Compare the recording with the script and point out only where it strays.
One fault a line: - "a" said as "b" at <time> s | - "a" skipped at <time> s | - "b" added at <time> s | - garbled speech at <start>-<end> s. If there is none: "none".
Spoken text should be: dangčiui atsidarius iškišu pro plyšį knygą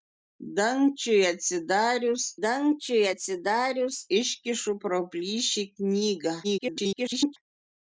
- "dangčiui atsidarius" added at 2.4 s
- garbled speech at 6.4-7.4 s